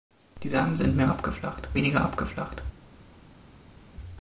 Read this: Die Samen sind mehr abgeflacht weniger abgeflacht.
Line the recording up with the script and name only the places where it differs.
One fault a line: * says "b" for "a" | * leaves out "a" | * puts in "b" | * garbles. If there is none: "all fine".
all fine